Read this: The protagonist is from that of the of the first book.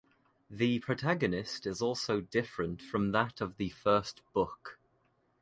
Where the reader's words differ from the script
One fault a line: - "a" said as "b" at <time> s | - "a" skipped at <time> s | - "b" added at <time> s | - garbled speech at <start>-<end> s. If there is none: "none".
- "also different" added at 1.8 s
- "of the" skipped at 3.7 s